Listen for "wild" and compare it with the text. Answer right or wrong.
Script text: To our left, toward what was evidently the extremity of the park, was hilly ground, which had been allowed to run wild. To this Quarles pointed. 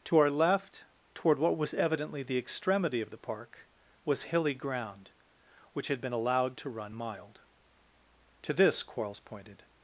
wrong